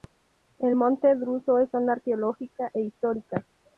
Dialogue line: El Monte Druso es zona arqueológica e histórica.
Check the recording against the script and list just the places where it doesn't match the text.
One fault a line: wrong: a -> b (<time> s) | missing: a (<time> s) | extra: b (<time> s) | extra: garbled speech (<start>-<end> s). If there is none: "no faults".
no faults